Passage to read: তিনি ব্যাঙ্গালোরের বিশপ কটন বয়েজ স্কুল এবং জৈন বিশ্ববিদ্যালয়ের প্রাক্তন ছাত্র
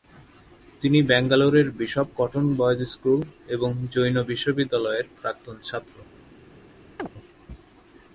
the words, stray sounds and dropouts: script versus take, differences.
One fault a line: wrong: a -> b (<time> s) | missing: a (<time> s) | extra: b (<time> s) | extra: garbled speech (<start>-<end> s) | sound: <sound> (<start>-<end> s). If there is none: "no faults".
sound: chirp (7.0-7.1 s)